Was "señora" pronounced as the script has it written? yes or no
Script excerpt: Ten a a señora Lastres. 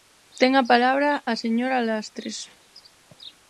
yes